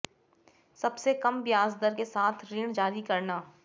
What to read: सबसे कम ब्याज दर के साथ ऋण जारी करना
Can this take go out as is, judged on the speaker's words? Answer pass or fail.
pass